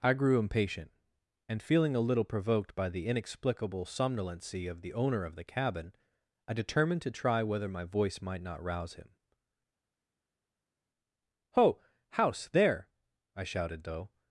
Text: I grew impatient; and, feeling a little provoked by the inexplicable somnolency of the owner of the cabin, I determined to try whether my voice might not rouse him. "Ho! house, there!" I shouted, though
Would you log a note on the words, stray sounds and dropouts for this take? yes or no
no